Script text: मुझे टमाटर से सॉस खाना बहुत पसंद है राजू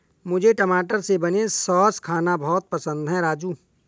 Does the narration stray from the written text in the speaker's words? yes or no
yes